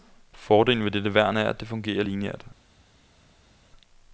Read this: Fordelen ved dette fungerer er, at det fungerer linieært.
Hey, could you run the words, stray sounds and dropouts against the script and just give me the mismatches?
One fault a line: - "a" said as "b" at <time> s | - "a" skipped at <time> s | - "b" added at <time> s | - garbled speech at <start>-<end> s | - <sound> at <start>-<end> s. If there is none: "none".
- "fungerer" said as "værn" at 1.1 s